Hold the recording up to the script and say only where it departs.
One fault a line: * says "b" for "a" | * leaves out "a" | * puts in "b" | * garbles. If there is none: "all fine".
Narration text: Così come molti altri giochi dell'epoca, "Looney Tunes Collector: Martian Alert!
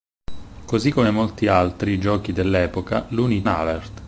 * leaves out "Tunes Collector Martian"